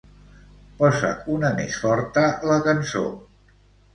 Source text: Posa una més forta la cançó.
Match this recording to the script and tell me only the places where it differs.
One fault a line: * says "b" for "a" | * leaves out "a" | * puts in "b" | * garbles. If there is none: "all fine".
all fine